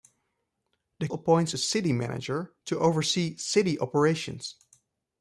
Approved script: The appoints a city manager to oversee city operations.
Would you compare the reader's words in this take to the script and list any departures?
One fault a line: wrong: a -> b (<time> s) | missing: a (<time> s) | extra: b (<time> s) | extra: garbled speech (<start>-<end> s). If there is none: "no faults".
no faults